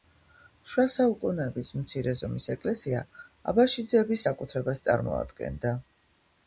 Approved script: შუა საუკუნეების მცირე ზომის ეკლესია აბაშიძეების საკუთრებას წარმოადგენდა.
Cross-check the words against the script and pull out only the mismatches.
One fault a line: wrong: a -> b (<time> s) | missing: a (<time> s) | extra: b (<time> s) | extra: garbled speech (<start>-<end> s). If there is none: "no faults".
no faults